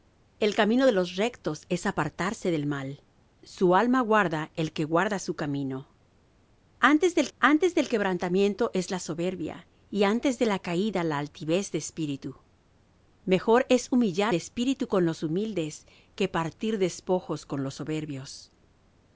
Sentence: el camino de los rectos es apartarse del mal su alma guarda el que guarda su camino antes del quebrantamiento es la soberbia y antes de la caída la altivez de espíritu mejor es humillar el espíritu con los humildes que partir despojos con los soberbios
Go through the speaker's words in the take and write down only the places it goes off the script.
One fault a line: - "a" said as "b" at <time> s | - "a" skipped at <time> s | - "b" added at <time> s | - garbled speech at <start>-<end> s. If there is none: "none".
- "antes del" added at 7.4 s
- "el" skipped at 14.3 s